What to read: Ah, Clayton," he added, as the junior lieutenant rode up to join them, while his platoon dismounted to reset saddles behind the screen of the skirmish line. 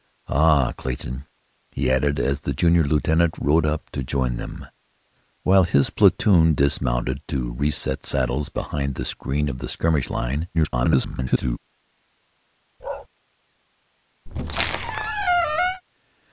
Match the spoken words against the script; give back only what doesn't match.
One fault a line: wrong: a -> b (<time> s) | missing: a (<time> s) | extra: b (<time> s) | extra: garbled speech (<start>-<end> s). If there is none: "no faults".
extra: garbled speech (10.5-11.6 s)